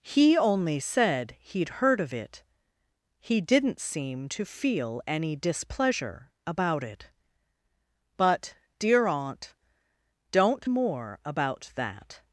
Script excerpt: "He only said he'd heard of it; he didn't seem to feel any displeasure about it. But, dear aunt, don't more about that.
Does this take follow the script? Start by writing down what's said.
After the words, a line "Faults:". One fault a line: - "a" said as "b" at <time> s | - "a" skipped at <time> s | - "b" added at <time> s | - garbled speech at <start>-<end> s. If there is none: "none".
"He only said he'd heard of it; he didn't seem to feel any displeasure about it. But, dear aunt, don't more about that.
Faults:
none